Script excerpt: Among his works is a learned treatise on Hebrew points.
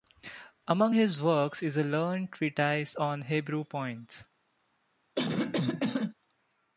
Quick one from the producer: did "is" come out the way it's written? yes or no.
yes